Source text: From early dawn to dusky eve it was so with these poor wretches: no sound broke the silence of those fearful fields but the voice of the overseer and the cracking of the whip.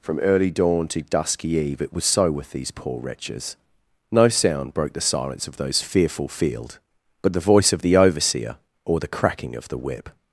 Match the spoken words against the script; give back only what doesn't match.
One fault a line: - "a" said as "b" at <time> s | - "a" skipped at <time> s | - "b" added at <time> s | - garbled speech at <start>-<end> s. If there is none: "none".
- "fields" said as "field" at 6.3 s
- "and" said as "or" at 8.8 s